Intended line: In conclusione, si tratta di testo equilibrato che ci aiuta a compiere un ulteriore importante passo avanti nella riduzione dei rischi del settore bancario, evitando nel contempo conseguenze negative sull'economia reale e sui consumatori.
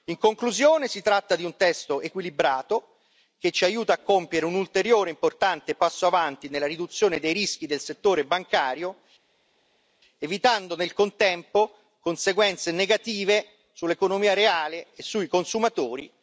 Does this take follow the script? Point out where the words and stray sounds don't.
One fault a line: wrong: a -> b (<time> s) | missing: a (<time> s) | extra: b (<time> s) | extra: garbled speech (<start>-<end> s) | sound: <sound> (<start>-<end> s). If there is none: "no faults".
extra: un (1.4 s)